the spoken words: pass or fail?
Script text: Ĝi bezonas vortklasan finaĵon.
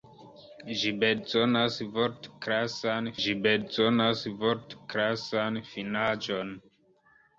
fail